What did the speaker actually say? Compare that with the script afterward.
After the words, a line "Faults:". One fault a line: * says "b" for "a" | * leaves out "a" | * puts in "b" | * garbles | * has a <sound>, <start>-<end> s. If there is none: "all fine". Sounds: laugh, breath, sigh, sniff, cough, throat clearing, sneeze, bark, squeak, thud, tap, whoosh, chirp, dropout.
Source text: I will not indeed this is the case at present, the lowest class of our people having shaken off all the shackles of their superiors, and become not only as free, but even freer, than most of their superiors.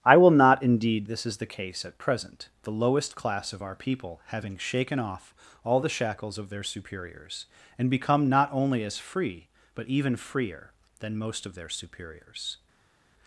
I will not indeed this is the case at present, the lowest class of our people having shaken off all the shackles of their superiors, and become not only as free, but even freer, than most of their superiors.
Faults:
all fine